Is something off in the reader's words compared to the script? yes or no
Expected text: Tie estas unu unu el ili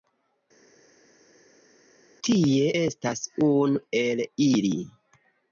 yes